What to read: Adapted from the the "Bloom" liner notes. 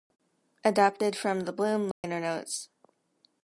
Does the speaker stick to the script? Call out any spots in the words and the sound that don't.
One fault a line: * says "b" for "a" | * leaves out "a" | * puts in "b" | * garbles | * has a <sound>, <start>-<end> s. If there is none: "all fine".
* leaves out "the"
* has a dropout, 1.9-2.0 s